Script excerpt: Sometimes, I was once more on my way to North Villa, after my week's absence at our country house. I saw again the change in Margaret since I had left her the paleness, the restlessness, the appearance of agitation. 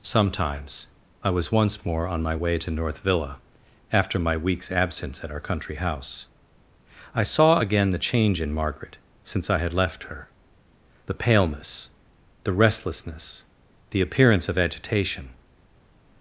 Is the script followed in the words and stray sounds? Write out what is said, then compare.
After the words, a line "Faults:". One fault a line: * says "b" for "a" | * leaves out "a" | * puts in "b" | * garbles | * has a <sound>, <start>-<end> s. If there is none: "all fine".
Sometimes, I was once more on my way to North Villa, after my week's absence at our country house. I saw again the change in Margaret since I had left her the paleness, the restlessness, the appearance of agitation.
Faults:
all fine